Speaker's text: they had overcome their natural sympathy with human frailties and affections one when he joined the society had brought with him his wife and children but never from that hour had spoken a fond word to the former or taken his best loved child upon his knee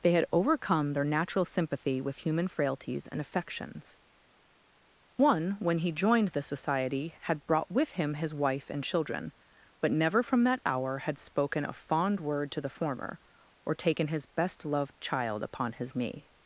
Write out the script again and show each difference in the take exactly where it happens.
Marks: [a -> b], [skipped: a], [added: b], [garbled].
they had overcome their natural sympathy with human frailties and affections one when he joined the society had brought with him his wife and children but never from that hour had spoken a fond word to the former or taken his best loved child upon his knee